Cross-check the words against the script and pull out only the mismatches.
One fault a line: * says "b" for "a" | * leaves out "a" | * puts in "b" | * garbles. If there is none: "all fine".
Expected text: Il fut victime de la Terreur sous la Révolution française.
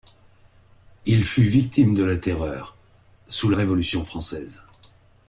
* leaves out "la"